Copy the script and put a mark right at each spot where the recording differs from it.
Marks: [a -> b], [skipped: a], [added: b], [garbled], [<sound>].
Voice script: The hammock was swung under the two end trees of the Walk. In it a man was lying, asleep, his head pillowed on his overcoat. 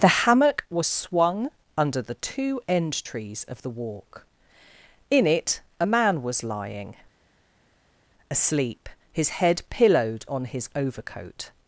The hammock was swung under the two end trees of the Walk. In it a man was lying, asleep, his head pillowed on his overcoat.